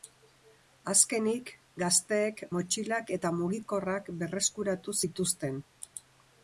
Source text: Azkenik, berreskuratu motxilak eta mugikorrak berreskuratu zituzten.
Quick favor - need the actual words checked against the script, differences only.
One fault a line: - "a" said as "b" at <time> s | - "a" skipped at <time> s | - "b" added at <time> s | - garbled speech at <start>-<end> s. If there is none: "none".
- "berreskuratu" said as "gazteek" at 1.8 s